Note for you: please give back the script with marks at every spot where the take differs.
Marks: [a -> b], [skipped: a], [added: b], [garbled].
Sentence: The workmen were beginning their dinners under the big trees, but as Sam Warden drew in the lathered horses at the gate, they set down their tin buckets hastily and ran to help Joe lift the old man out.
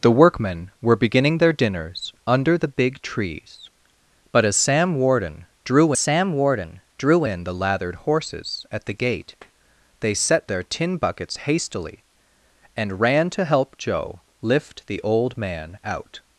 The workmen were beginning their dinners under the big trees, but as Sam Warden drew [added: Sam Warden drew] in the lathered horses at the gate, they set [skipped: down] their tin buckets hastily and ran to help Joe lift the old man out.